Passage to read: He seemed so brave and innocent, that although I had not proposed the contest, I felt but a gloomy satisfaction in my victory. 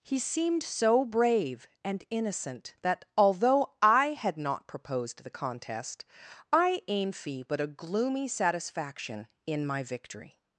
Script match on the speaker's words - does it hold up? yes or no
no